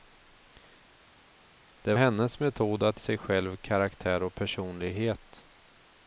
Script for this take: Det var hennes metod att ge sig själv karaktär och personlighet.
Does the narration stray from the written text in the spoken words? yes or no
yes